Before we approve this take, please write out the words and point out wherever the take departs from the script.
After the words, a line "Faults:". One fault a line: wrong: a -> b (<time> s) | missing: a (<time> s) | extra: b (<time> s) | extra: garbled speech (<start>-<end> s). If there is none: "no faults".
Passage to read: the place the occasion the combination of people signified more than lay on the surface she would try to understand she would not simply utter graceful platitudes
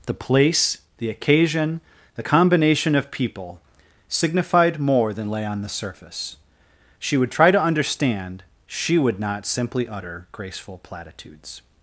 the place the occasion the combination of people signified more than lay on the surface she would try to understand she would not simply utter graceful platitudes
Faults:
no faults